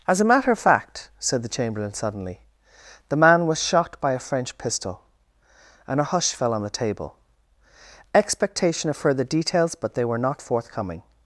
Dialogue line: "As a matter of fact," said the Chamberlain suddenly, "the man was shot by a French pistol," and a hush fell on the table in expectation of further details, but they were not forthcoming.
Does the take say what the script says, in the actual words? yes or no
no